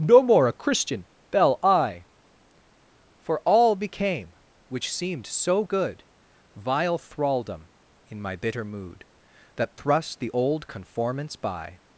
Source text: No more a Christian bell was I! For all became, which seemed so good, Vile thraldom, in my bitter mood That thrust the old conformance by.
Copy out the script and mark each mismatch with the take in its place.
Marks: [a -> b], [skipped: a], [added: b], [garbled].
No more a Christian bell [skipped: was] I! For all became, which seemed so good, Vile thraldom, in my bitter mood That thrust the old conformance by.